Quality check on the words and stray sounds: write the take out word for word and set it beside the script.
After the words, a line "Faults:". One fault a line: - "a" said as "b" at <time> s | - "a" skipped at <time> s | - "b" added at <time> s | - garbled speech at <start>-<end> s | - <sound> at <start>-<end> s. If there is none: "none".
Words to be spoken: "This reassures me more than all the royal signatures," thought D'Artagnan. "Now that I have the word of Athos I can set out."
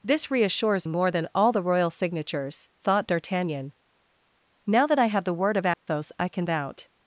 "This reassures more than all the royal signatures," thought D'Artagnan. "Now that I have the word of Athos I can out."
Faults:
- "me" skipped at 0.9 s
- dropout at 5.7-5.9 s
- "set" skipped at 6.5 s